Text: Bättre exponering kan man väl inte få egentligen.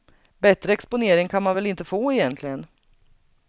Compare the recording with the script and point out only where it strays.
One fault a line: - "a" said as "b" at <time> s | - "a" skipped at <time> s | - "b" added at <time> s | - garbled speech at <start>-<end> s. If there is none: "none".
none